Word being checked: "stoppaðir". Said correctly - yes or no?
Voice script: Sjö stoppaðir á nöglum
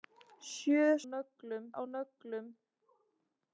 no